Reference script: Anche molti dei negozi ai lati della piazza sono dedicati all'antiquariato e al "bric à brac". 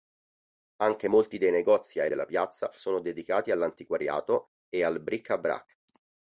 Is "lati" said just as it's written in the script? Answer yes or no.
no